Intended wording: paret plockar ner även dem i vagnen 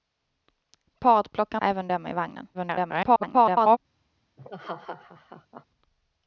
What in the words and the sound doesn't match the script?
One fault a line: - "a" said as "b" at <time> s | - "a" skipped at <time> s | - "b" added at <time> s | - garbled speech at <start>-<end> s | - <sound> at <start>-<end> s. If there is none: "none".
- "ner" skipped at 1.6 s
- garbled speech at 2.5-3.8 s
- laugh at 4.4-5.7 s